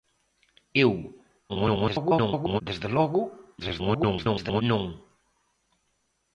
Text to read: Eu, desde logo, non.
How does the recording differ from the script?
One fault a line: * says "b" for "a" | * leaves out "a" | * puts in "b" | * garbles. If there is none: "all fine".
* garbles
* garbles